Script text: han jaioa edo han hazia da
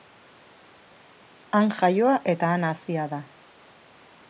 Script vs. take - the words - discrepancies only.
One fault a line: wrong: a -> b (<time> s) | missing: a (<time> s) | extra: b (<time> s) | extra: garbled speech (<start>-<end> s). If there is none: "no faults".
wrong: edo -> eta (2.4 s)